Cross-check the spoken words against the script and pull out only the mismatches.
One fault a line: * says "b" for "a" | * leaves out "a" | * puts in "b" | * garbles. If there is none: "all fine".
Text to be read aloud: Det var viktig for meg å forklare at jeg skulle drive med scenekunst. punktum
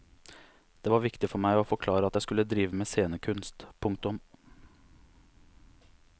all fine